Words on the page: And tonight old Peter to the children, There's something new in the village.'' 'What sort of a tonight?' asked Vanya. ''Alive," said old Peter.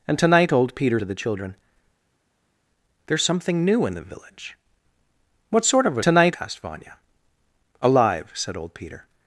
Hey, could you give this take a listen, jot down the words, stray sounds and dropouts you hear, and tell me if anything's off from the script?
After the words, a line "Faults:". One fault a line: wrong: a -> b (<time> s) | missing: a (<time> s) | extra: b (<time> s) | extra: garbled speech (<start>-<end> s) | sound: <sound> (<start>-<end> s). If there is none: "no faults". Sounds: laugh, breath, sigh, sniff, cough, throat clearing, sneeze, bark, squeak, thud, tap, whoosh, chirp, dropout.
And tonight old Peter to the children, There's something new in the village.'' 'What sort of a tonight?' asked Vanya. ''Alive," said old Peter.
Faults:
no faults